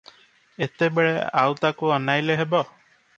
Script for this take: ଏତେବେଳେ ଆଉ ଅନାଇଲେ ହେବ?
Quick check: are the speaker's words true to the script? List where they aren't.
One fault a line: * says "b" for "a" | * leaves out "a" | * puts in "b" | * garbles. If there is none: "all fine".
* puts in "ତାକୁ"